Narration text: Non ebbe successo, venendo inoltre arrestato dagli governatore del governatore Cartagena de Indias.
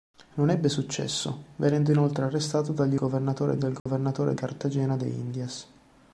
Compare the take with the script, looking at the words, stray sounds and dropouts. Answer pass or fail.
fail